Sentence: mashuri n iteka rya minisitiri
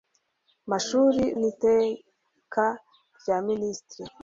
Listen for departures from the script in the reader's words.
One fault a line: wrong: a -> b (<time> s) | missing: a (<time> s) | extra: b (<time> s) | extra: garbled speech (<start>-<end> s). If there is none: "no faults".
no faults